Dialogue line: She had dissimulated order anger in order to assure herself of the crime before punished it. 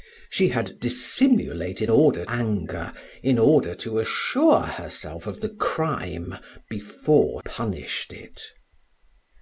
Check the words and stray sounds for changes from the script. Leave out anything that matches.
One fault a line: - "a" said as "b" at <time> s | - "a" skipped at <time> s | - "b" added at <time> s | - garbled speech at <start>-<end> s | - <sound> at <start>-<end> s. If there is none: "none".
none